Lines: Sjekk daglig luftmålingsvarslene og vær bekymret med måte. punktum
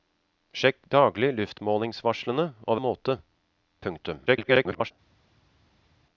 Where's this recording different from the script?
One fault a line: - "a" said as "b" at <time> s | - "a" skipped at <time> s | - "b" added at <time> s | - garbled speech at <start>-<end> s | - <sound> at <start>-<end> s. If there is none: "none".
- "vær bekymret" skipped at 2.8 s
- garbled speech at 4.3-4.9 s